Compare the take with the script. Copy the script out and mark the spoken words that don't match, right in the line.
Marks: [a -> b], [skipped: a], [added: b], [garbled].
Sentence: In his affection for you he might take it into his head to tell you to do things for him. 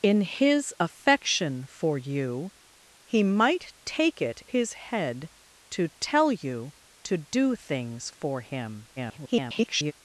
In his affection for you he might take it [skipped: into] his head to tell you to do things for him. [garbled]